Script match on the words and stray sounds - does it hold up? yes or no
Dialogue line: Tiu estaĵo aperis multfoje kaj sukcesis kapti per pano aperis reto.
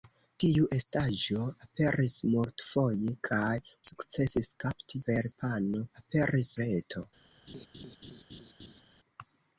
no